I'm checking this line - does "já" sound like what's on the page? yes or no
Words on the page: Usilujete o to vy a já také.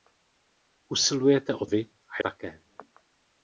no